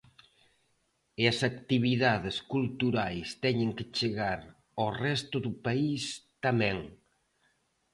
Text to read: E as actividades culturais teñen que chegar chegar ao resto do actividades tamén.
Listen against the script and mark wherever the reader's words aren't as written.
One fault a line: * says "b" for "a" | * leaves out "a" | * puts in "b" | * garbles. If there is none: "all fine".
* leaves out "chegar"
* says "país" for "actividades"